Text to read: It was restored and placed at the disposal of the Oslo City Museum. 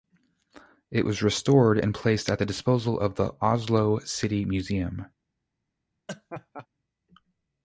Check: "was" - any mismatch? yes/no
no